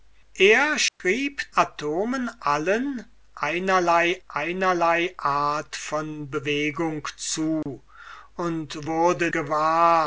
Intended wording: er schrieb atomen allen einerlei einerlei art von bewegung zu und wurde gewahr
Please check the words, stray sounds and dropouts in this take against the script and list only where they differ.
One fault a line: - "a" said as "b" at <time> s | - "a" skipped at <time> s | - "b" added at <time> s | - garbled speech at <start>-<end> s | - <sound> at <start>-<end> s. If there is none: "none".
- dropout at 0.9-1.0 s
- dropout at 7.6-7.7 s